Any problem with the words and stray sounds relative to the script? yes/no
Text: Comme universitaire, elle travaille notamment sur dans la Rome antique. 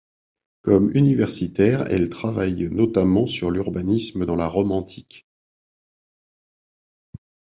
yes